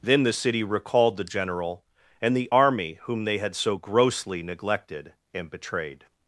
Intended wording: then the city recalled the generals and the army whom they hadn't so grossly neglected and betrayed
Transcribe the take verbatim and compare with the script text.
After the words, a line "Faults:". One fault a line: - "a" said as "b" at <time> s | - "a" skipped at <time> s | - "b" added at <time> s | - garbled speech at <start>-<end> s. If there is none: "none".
then the city recalled the general and the army whom they had so grossly neglected and betrayed
Faults:
- "generals" said as "general" at 1.2 s
- "hadn't" said as "had" at 3.4 s